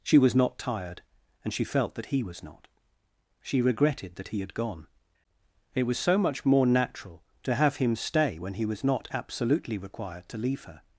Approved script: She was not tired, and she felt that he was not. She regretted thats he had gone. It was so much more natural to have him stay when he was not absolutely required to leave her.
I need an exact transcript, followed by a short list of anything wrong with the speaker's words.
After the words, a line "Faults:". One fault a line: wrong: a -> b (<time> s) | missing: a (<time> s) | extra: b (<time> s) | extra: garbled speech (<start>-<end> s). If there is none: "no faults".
She was not tired, and she felt that he was not. She regretted that he had gone. It was so much more natural to have him stay when he was not absolutely required to leave her.
Faults:
wrong: thats -> that (4.2 s)